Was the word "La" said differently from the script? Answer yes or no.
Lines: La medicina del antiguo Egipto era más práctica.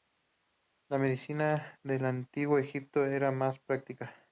no